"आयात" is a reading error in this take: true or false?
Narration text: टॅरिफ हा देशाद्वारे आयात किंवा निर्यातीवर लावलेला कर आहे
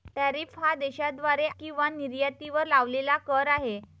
true